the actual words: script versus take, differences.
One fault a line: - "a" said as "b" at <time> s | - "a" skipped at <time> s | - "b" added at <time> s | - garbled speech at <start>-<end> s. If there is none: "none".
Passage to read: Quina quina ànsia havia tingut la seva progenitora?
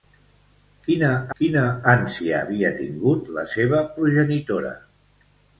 none